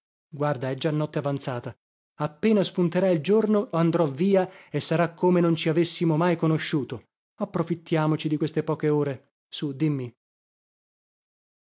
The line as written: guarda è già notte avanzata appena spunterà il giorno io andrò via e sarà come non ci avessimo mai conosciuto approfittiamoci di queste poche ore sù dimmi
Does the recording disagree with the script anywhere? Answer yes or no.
yes